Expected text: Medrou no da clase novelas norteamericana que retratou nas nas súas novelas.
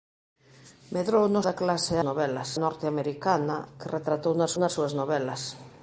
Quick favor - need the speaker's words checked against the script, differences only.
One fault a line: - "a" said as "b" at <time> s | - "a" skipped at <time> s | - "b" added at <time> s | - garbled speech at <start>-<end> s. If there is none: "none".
none